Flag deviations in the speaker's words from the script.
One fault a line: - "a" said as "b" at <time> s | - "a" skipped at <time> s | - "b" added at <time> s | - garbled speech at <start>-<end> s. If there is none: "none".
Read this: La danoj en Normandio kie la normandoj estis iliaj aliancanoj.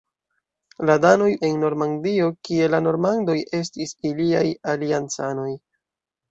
none